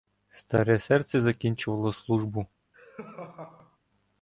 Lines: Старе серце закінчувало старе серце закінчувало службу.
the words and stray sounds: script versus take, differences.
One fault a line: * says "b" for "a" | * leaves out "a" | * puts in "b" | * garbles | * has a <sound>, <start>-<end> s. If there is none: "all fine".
* leaves out "старе серце закінчувало"
* has a laugh, 2.7-3.8 s